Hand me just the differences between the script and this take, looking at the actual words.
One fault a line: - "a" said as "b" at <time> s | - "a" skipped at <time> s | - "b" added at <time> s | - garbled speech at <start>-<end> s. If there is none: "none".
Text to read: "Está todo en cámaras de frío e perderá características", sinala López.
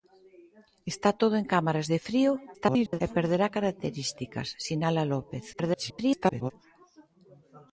- garbled speech at 2.5-3.0 s
- garbled speech at 5.5-6.5 s